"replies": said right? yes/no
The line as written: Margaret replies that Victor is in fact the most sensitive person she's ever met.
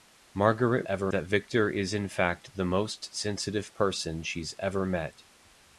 no